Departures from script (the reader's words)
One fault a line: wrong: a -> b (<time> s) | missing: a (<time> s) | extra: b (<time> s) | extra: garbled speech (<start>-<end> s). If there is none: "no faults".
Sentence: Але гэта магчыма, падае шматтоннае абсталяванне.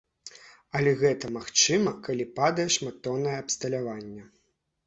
extra: калі (2.1 s)